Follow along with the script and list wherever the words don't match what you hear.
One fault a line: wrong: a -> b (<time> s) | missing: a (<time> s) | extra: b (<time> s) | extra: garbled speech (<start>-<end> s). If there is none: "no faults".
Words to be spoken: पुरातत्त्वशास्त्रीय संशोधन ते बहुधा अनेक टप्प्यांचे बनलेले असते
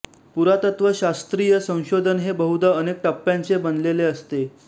wrong: ते -> हे (2.2 s)